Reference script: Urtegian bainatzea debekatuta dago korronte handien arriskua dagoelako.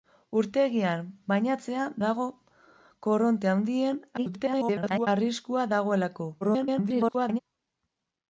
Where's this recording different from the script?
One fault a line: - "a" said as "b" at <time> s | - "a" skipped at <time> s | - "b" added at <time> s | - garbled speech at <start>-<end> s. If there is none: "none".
- "debekatuta" skipped at 1.8 s
- garbled speech at 4.2-5.1 s
- garbled speech at 6.4-7.4 s